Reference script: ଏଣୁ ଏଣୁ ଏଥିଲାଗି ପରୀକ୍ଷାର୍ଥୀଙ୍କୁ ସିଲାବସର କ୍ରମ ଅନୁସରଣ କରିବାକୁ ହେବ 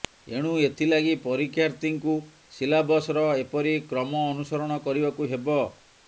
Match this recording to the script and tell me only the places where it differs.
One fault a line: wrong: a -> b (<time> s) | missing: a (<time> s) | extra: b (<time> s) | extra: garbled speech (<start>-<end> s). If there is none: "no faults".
missing: ଏଣୁ (0.5 s)
extra: ଏପରି (3.4 s)